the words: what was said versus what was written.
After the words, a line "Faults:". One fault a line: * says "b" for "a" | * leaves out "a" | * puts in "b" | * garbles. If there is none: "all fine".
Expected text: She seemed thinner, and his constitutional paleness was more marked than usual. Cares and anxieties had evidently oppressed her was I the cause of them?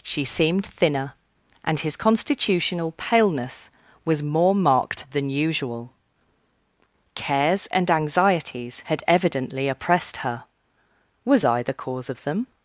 She seemed thinner, and his constitutional paleness was more marked than usual. Cares and anxieties had evidently oppressed her was I the cause of them?
Faults:
all fine